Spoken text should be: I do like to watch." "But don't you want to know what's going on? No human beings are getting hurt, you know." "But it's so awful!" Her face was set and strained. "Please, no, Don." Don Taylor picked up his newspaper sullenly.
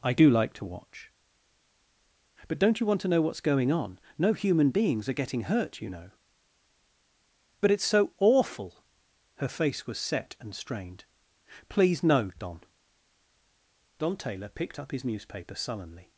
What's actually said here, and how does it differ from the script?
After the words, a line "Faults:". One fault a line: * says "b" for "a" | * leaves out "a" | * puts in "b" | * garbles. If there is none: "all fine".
I do like to watch." "But don't you want to know what's going on? No human beings are getting hurt, you know." "But it's so awful!" Her face was set and strained. "Please, no, Don." Don Taylor picked up his newspaper sullenly.
Faults:
all fine